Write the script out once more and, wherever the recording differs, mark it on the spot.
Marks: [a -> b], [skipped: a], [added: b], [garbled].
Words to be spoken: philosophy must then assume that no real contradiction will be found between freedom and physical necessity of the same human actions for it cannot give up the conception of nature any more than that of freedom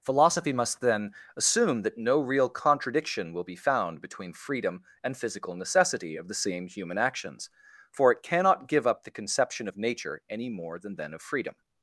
philosophy must then assume that no real contradiction will be found between freedom and physical necessity of the same human actions for it cannot give up the conception of nature any more than [that -> then] of freedom